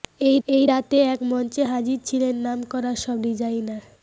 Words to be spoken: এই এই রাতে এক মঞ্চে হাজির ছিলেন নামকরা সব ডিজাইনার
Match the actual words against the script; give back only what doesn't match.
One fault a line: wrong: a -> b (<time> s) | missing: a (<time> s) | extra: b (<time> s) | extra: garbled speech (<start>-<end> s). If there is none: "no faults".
no faults